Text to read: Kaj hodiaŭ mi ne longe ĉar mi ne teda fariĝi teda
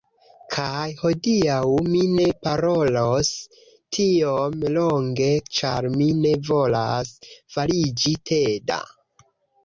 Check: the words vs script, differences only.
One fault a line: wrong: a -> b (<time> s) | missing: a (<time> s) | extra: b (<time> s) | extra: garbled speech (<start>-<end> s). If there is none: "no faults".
extra: parolos tiom (2.5 s)
wrong: teda -> volas (6.5 s)